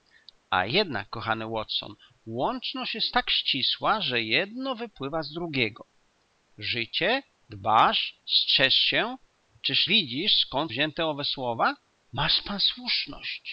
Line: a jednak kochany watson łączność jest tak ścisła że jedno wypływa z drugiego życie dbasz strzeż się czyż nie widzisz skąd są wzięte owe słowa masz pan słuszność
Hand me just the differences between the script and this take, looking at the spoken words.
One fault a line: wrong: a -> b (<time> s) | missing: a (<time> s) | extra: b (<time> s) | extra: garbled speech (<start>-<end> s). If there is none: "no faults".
missing: nie (9.9 s)
missing: są (10.7 s)